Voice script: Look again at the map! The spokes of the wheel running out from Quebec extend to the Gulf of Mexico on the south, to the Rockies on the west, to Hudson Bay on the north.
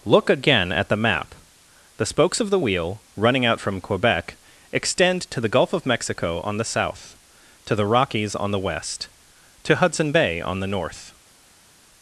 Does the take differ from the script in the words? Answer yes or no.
no